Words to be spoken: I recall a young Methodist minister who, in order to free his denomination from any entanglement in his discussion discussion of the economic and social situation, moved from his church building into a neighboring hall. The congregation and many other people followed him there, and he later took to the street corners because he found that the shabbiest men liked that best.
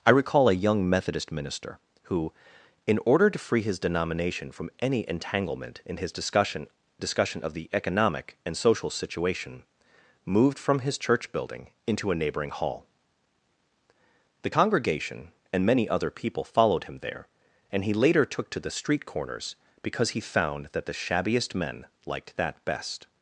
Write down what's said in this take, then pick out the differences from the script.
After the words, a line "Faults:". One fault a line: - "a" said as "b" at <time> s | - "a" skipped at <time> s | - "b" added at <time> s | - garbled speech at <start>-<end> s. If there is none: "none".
I recall a young Methodist minister who, in order to free his denomination from any entanglement in his discussion discussion of the economic and social situation, moved from his church building into a neighboring hall. The congregation and many other people followed him there, and he later took to the street corners because he found that the shabbiest men liked that best.
Faults:
none